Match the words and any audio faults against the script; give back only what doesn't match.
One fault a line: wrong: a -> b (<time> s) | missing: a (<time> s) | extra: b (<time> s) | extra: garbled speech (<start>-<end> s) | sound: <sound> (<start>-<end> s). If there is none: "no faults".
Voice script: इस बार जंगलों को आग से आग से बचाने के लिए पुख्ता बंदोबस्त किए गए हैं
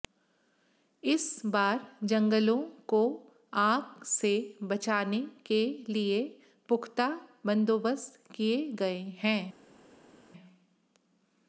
missing: आग से (4.3 s)